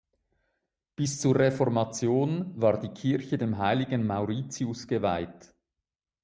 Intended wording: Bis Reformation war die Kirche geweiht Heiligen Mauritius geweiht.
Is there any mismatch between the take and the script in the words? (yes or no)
yes